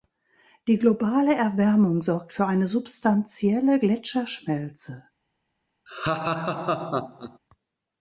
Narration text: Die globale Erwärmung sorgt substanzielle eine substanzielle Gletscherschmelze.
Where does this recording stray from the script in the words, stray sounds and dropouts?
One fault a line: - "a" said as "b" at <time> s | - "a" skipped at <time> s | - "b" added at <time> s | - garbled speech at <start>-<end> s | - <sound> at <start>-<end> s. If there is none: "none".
- "substanzielle" said as "für" at 2.3 s
- laugh at 5.9-7.4 s